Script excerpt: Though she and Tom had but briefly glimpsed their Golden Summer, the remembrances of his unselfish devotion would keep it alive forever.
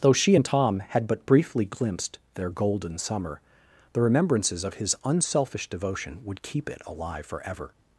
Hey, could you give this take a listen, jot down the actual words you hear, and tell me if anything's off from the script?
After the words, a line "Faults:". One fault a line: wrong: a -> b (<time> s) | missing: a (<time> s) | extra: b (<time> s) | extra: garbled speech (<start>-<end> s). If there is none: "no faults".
Though she and Tom had but briefly glimpsed their Golden Summer, the remembrances of his unselfish devotion would keep it alive forever.
Faults:
no faults